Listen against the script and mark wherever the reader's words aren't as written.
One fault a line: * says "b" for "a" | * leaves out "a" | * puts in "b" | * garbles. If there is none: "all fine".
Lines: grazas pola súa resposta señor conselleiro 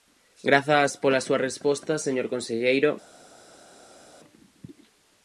all fine